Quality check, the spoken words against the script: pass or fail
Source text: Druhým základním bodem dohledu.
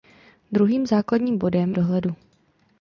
pass